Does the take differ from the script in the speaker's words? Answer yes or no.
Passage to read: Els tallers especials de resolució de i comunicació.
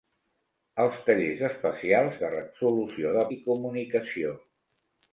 no